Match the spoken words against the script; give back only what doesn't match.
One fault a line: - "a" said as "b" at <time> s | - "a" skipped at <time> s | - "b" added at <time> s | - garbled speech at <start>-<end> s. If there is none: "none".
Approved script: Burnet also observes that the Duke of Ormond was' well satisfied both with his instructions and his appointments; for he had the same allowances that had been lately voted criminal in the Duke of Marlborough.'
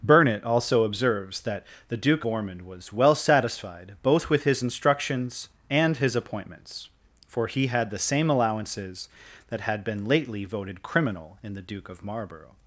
- "of" skipped at 2.2 s